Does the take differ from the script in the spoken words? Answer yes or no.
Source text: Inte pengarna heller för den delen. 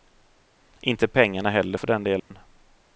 no